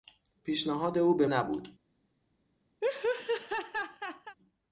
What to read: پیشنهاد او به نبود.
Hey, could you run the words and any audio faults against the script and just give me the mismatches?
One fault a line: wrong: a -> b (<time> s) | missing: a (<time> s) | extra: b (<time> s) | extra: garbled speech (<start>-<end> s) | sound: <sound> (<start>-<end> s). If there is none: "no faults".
sound: laugh (2.8-4.4 s)